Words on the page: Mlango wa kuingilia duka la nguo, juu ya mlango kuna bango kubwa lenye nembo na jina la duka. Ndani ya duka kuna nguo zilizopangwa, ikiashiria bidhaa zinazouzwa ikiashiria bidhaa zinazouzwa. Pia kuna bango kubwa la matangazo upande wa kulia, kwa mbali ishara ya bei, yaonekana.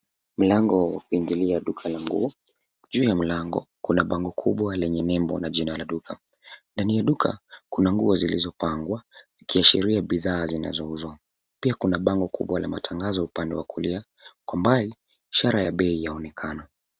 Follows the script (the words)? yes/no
no